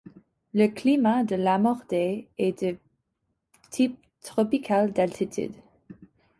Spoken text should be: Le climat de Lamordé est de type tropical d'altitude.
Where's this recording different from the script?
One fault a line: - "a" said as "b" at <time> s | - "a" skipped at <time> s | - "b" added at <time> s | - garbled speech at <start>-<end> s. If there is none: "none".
none